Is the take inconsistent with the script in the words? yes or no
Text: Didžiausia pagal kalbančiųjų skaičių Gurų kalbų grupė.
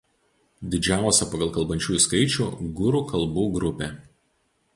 no